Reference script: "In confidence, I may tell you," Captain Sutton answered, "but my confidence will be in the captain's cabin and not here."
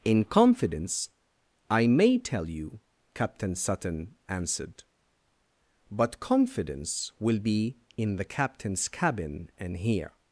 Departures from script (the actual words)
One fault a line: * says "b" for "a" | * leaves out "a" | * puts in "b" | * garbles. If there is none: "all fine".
* leaves out "my"
* leaves out "not"